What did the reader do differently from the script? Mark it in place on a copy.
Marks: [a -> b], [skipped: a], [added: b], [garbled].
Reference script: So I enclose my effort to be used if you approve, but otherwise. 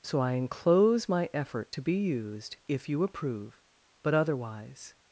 So I enclose my effort to be used if you approve, but otherwise.